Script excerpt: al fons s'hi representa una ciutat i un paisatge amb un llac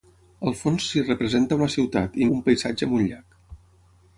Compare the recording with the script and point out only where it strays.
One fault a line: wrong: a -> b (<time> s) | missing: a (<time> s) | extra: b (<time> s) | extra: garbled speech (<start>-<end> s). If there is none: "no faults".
no faults